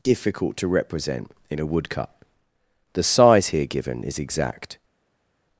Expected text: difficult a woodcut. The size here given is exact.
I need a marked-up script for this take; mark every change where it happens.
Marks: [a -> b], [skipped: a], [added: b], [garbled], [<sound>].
difficult [added: to represent in] a woodcut. The size here given is exact.